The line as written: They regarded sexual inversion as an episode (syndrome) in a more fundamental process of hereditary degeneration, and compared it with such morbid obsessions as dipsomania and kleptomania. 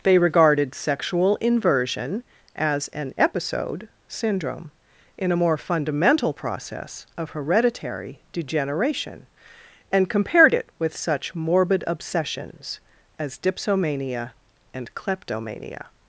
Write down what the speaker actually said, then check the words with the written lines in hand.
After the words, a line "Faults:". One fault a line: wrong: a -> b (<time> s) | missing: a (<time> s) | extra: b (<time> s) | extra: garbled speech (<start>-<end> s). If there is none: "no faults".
They regarded sexual inversion as an episode (syndrome) in a more fundamental process of hereditary degeneration, and compared it with such morbid obsessions as dipsomania and kleptomania.
Faults:
no faults